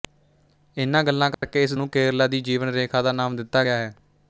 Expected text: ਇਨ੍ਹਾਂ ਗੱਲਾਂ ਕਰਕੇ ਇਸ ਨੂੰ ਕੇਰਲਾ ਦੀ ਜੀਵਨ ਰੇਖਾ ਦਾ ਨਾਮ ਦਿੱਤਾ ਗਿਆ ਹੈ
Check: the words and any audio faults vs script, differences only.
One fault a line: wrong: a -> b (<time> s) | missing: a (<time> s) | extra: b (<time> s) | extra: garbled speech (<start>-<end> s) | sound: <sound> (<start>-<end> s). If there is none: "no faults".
sound: dropout (1.3-1.4 s)